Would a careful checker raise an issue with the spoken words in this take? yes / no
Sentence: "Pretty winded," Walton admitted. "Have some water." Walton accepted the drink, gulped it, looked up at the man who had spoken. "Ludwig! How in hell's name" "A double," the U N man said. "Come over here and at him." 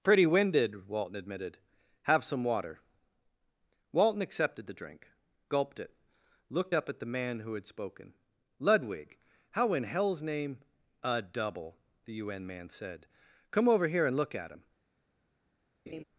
yes